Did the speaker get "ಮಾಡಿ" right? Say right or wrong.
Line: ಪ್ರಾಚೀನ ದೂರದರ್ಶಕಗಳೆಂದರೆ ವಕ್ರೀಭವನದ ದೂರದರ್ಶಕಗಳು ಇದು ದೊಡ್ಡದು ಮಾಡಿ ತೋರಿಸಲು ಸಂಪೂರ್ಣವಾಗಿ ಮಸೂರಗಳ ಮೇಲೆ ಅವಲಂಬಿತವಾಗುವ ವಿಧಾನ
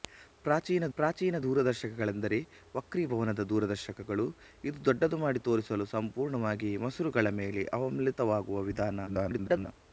right